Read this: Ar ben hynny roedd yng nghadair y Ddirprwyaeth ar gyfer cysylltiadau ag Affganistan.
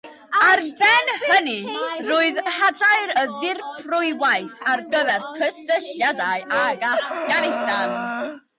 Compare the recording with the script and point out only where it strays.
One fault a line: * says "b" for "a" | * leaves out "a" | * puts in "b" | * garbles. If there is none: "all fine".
* leaves out "yng"